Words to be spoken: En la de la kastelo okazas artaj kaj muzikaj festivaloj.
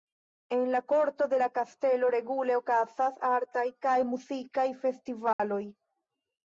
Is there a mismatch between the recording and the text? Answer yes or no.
yes